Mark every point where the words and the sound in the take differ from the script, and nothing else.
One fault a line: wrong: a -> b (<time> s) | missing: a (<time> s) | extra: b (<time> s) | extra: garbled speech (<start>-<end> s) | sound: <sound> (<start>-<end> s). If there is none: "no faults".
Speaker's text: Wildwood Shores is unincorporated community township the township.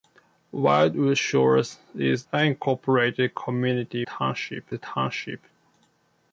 no faults